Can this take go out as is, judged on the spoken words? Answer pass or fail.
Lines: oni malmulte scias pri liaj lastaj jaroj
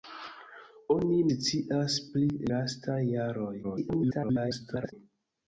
fail